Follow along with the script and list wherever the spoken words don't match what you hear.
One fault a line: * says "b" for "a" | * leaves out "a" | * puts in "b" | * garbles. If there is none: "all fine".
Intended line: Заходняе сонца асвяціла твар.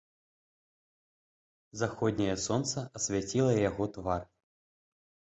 * puts in "яго"